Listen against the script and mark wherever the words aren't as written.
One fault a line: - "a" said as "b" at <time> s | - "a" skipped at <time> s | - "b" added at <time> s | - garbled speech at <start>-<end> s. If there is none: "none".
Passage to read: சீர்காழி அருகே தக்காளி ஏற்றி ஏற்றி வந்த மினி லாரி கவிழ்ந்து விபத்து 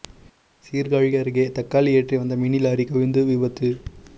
- "ஏற்றி" skipped at 2.2 s